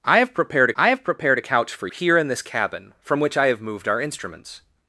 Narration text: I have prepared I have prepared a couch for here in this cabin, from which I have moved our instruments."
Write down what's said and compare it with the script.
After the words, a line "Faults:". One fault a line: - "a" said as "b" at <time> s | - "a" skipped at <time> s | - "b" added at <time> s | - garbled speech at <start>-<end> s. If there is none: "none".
I have prepared I have prepared a couch for here in this cabin, from which I have moved our instruments."
Faults:
none